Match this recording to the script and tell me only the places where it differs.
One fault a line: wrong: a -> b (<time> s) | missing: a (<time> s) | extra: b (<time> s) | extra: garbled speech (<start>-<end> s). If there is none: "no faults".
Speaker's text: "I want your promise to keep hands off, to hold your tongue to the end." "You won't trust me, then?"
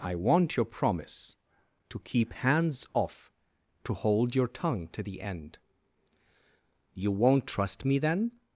no faults